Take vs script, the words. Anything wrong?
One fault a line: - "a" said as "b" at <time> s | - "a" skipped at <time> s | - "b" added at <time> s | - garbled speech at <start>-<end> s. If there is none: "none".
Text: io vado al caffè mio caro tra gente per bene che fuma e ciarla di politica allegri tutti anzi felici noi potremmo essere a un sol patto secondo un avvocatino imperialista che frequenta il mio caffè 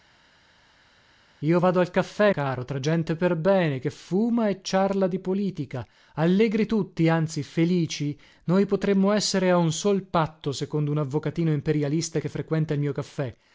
- "mio" skipped at 2.3 s